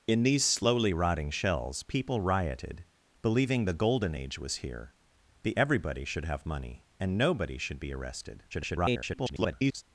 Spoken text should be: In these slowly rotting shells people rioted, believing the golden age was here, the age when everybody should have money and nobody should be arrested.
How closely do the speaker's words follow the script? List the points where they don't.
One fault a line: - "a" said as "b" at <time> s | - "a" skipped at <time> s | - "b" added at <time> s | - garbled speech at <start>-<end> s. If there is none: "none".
- "age when" skipped at 5.6 s
- garbled speech at 8.5-9.8 s